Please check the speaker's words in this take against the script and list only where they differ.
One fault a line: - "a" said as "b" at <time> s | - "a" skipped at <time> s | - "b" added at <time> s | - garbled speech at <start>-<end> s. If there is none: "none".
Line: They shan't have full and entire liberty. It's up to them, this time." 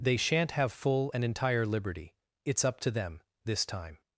none